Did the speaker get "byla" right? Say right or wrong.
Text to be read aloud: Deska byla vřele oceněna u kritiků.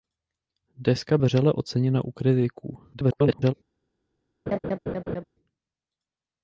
wrong